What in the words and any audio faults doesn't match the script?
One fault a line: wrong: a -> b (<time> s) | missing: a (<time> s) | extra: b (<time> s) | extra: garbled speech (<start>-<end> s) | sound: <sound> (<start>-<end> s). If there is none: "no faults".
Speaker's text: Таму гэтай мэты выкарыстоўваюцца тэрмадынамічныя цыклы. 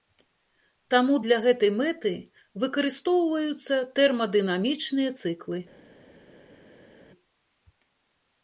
extra: для (1.2 s)